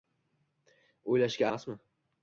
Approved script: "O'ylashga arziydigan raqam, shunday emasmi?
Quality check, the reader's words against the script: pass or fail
fail